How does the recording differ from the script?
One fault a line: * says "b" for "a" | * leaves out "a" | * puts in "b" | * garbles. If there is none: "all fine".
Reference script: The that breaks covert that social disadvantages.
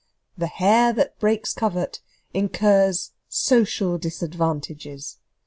* puts in "hare"
* says "incurs" for "that"